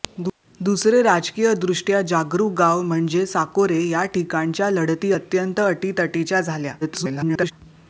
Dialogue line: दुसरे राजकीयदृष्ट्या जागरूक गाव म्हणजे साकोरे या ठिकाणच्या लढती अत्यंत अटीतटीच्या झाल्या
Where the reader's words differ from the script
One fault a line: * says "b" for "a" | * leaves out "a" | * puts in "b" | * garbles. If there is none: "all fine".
* garbles